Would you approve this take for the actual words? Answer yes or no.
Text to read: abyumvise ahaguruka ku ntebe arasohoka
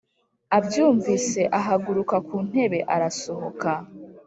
yes